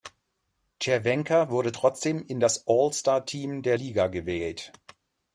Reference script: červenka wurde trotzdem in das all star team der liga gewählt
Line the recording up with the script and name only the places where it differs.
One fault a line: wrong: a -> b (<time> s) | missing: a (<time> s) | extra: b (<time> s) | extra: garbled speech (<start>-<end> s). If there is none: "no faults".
no faults